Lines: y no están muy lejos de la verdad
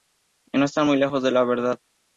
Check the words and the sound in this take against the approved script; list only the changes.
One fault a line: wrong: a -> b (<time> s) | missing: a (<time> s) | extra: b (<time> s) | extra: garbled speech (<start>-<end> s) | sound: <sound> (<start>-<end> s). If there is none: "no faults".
no faults